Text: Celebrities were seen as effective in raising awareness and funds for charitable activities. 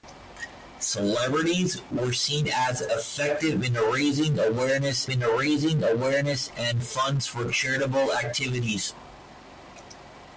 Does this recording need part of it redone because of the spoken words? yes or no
yes